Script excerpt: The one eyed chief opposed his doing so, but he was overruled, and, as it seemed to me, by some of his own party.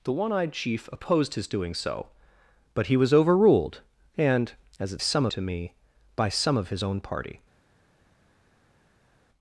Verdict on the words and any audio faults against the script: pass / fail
fail